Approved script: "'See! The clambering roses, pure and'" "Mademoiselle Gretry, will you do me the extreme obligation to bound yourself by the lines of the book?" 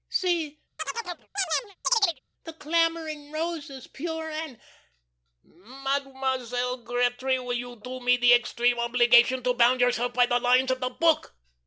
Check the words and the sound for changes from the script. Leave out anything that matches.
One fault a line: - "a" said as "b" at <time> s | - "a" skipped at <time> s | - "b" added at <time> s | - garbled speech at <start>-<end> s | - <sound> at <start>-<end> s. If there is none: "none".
- chirp at 0.8-2.2 s